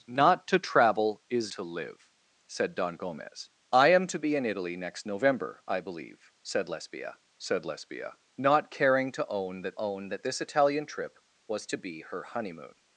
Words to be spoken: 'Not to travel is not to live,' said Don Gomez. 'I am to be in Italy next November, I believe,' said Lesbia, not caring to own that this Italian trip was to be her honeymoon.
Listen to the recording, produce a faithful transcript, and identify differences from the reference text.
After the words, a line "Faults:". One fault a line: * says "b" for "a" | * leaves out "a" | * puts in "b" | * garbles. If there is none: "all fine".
'Not to travel is to live,' said Don Gomez. 'I am to be in Italy next November, I believe,' said Lesbia said Lesbia, not caring to own that own that this Italian trip was to be her honeymoon.
Faults:
* leaves out "not"
* puts in "said Lesbia"
* puts in "own that"